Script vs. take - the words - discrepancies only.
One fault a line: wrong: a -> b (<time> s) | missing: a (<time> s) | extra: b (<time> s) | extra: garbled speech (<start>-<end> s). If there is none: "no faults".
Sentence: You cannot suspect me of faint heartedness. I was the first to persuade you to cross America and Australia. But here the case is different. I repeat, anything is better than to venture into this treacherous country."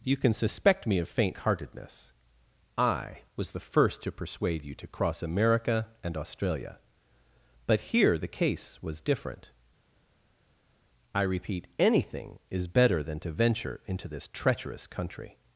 wrong: cannot -> can (0.2 s)
wrong: is -> was (8.8 s)